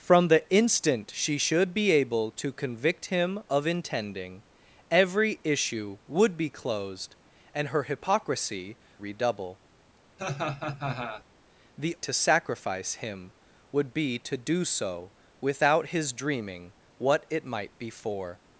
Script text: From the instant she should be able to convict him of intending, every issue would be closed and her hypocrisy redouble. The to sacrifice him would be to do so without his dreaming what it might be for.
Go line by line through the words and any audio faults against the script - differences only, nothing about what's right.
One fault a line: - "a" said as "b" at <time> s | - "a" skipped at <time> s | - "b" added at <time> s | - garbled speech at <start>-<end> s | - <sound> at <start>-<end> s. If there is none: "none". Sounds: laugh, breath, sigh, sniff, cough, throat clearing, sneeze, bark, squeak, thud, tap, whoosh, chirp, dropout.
- laugh at 10.2-11.2 s